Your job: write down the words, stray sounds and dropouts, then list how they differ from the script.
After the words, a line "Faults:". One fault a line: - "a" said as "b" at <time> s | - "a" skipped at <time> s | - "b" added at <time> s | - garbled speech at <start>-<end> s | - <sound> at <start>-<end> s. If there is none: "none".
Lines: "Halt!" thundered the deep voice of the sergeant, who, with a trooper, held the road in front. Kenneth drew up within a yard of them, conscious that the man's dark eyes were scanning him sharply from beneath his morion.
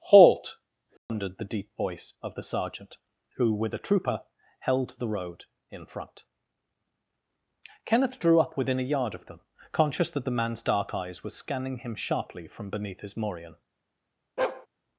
"Halt!" thundered the deep voice of the sergeant, who, with a trooper, held the road in front. Kenneth drew up within a yard of them, conscious that the man's dark eyes were scanning him sharply from beneath his morion.
Faults:
- dropout at 1.0-1.1 s
- bark at 14.4-14.7 s